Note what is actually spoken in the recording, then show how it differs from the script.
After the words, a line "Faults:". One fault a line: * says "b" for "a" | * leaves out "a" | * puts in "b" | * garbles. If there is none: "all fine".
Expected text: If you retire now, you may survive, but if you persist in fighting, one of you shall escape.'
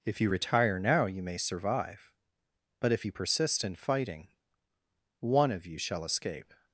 If you retire now, you may survive, but if you persist in fighting, one of you shall escape.'
Faults:
all fine